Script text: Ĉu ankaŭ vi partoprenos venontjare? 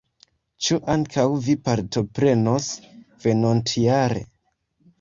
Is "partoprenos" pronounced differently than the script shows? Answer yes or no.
no